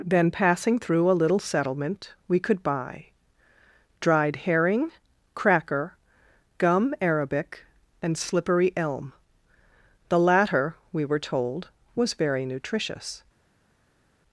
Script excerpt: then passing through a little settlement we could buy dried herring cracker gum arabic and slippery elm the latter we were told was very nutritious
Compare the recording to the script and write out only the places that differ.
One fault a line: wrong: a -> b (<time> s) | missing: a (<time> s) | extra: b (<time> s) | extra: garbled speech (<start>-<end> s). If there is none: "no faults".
no faults